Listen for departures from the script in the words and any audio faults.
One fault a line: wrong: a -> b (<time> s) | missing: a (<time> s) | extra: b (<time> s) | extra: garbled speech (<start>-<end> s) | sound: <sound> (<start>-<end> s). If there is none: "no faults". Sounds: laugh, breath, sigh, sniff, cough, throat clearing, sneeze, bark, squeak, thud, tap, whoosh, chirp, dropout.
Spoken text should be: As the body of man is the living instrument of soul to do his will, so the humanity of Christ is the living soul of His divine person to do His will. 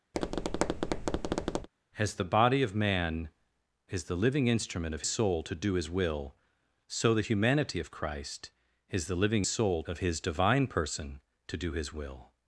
sound: tap (0.1-1.7 s)